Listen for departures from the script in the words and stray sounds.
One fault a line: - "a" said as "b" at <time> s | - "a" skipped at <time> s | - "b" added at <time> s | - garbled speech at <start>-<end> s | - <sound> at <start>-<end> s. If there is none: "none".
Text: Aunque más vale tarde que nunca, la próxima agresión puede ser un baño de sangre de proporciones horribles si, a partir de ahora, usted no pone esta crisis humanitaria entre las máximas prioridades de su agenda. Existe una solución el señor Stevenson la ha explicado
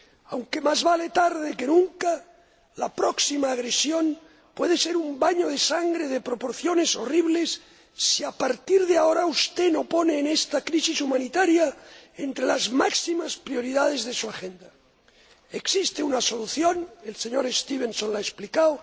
none